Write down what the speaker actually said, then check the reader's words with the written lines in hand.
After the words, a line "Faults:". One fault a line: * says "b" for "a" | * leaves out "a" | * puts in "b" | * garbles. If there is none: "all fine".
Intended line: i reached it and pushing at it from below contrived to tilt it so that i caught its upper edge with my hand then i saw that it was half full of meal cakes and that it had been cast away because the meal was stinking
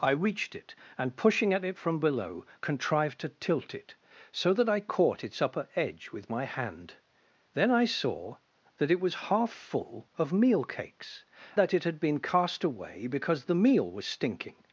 i reached it and pushing at it from below contrived to tilt it so that i caught its upper edge with my hand then i saw that it was half full of meal cakes that it had been cast away because the meal was stinking
Faults:
* leaves out "and"